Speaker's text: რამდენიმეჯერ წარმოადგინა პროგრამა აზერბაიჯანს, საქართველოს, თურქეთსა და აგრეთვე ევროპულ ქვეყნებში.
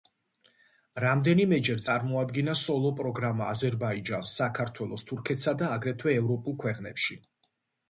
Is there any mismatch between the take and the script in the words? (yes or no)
yes